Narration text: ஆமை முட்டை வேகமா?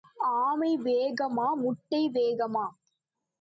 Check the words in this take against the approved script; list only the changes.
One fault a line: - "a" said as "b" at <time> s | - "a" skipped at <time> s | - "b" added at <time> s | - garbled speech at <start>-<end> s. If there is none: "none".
- "வேகமா" added at 0.8 s